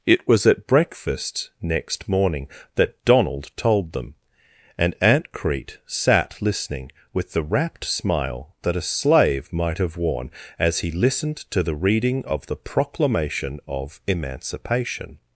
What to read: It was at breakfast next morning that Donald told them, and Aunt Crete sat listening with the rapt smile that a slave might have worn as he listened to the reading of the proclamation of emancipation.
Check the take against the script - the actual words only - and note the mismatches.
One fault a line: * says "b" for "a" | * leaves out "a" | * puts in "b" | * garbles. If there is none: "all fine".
all fine